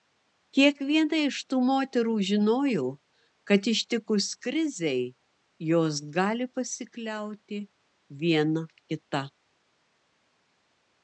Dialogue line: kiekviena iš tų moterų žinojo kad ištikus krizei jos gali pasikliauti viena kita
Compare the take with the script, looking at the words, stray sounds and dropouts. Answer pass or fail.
pass